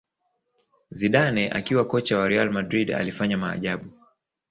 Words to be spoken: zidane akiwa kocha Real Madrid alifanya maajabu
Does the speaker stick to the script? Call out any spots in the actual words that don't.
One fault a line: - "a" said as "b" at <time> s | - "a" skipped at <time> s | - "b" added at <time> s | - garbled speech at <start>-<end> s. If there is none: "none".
- "wa" added at 2.2 s